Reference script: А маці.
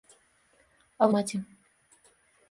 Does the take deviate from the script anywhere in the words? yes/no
no